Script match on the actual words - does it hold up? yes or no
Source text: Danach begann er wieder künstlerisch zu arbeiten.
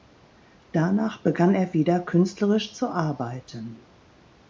yes